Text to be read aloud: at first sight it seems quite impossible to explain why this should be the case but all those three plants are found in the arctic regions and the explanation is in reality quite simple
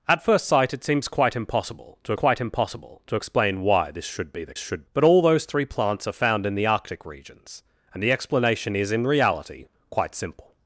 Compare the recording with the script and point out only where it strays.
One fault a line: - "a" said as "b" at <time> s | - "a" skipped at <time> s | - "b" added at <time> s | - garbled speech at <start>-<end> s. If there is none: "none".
- "quite impossible to" added at 2.1 s
- "case" said as "should" at 4.6 s